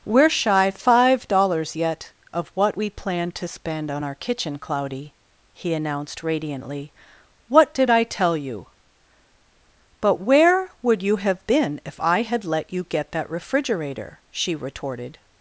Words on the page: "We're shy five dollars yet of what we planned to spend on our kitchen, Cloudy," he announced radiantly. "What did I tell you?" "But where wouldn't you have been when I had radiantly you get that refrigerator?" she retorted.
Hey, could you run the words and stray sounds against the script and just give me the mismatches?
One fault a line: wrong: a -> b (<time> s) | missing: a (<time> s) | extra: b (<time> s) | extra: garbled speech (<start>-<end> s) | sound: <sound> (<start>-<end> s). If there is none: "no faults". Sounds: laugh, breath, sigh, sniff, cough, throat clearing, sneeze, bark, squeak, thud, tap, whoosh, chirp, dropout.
wrong: wouldn't -> would (10.8 s)
wrong: when -> if (11.8 s)
wrong: radiantly -> let (12.4 s)